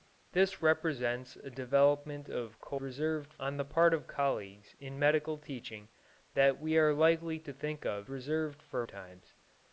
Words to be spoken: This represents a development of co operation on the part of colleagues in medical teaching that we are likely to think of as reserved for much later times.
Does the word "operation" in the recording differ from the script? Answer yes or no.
yes